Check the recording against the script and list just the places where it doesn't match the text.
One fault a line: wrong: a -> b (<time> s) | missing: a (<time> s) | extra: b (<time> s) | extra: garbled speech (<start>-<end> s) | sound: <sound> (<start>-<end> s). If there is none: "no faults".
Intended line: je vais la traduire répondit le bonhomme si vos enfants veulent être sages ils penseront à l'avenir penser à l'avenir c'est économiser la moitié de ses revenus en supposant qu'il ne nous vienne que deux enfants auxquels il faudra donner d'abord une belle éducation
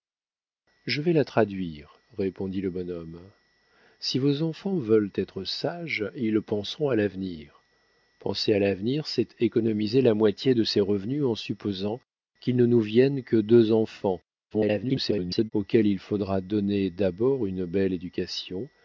extra: garbled speech (14.5-15.5 s)